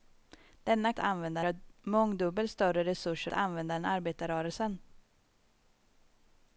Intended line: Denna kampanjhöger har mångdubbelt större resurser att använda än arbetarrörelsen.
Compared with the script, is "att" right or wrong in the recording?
wrong